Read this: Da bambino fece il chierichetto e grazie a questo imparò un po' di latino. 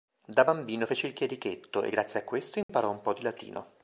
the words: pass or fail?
pass